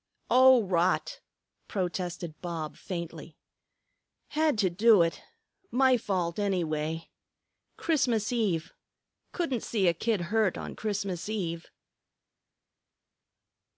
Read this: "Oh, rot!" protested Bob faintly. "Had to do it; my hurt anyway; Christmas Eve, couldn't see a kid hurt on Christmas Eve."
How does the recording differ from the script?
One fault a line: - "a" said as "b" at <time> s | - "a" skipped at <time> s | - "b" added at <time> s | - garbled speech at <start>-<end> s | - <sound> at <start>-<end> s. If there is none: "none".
- "hurt" said as "fault" at 6.0 s